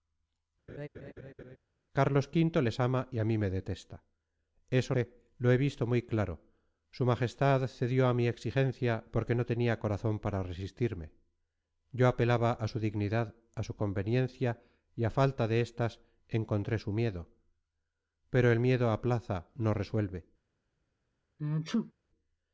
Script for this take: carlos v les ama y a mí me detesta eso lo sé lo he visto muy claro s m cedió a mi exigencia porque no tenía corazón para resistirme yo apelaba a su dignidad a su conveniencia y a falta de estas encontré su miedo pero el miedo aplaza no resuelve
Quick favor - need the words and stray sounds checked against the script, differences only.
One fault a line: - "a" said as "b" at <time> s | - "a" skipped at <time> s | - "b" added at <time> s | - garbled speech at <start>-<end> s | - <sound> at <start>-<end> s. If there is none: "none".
- laugh at 0.7-1.6 s
- "lo" skipped at 4.9 s
- sneeze at 21.4-21.9 s